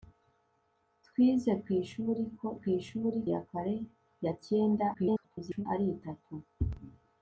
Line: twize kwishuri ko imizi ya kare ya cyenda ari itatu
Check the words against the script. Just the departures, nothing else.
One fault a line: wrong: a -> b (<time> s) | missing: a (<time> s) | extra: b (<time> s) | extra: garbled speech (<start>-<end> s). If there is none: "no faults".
wrong: imizi -> kwishuri (2.6 s)
extra: garbled speech (4.9-5.7 s)